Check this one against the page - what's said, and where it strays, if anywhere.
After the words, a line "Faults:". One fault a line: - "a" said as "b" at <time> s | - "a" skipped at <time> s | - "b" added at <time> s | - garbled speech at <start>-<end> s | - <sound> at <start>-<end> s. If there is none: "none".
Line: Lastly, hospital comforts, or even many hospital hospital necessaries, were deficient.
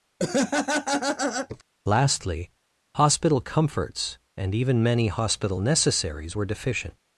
Lastly, hospital comforts, and even many hospital necessaries, were deficient.
Faults:
- laugh at 0.2-1.6 s
- "or" said as "and" at 4.4 s
- "hospital" skipped at 5.6 s